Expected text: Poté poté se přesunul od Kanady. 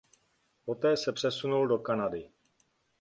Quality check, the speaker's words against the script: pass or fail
fail